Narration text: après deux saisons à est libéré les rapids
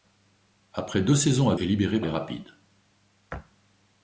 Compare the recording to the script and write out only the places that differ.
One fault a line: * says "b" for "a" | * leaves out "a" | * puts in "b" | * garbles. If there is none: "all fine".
all fine